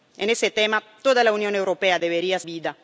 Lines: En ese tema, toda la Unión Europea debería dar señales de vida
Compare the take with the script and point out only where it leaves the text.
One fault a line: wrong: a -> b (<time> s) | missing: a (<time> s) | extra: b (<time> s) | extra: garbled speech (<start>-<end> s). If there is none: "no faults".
missing: dar señales de (2.4 s)